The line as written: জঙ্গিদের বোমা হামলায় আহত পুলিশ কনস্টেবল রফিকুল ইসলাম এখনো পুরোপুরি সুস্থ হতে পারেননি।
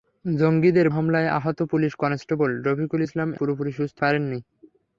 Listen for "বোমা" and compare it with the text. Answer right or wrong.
wrong